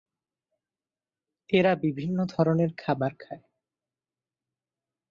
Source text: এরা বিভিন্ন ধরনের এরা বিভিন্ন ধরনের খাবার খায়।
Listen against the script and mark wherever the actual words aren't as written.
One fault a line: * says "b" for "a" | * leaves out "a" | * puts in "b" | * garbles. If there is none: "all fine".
* leaves out "এরা বিভিন্ন ধরনের"